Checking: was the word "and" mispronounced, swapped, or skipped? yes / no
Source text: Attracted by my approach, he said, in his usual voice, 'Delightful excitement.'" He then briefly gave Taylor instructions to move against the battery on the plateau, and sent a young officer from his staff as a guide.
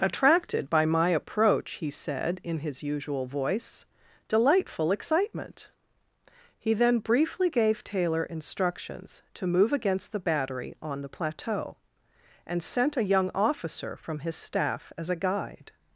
no